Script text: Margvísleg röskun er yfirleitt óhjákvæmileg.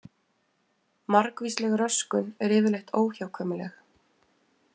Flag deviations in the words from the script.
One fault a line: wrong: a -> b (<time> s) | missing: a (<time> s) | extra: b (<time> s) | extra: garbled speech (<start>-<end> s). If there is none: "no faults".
no faults